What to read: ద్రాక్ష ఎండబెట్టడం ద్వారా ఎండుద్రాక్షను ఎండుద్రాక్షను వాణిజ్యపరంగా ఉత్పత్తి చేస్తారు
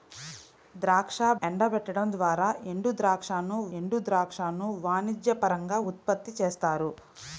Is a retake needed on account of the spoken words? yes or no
no